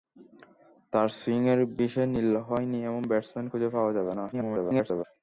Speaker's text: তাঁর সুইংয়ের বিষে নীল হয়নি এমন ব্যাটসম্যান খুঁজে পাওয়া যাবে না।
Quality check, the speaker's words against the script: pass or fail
fail